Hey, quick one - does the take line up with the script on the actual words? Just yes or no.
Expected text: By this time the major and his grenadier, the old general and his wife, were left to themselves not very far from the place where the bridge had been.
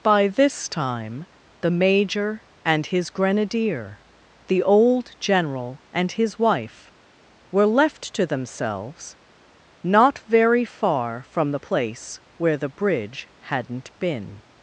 no